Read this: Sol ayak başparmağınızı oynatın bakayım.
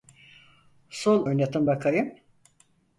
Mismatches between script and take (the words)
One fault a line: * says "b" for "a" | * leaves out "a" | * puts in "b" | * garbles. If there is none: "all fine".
* leaves out "ayak başparmağınızı"